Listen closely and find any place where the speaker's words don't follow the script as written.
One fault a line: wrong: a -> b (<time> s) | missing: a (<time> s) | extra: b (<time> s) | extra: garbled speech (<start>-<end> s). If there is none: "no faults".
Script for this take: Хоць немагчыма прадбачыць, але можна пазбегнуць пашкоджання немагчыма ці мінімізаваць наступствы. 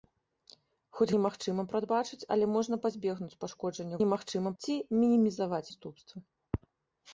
no faults